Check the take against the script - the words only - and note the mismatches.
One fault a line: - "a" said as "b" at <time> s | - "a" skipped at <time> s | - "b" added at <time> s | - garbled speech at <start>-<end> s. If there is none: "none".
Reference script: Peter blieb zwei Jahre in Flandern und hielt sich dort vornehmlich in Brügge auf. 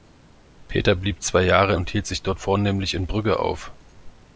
- "in Flandern" skipped at 1.8 s